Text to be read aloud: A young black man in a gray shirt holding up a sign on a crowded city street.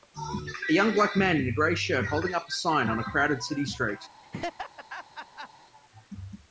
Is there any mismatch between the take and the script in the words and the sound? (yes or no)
yes